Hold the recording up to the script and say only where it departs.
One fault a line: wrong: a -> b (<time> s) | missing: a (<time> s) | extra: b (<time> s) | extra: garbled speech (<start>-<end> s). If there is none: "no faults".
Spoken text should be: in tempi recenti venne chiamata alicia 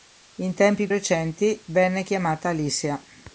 no faults